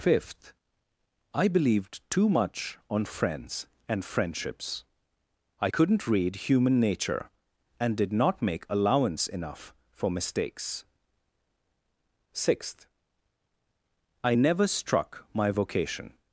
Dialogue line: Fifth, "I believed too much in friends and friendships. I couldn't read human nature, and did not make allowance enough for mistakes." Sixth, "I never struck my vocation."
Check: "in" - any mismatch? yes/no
yes